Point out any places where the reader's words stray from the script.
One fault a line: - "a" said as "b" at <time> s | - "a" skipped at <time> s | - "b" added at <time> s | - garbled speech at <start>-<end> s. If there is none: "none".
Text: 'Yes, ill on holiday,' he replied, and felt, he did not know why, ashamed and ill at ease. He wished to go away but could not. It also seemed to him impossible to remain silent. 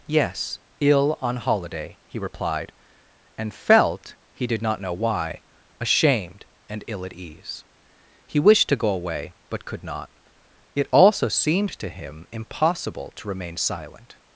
none